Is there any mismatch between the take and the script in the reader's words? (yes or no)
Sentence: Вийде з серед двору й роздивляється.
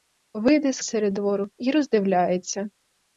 no